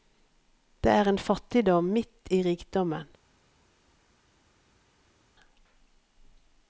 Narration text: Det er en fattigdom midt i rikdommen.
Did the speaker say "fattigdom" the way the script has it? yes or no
yes